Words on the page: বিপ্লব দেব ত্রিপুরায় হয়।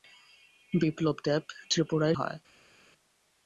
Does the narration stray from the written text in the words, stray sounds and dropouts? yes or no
no